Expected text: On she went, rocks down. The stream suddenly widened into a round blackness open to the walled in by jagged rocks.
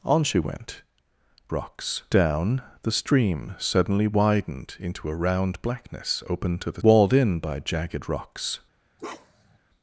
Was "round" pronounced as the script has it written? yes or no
yes